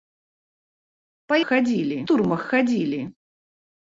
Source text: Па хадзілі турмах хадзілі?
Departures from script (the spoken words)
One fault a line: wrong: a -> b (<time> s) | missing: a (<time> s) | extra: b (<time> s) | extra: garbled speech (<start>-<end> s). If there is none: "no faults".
no faults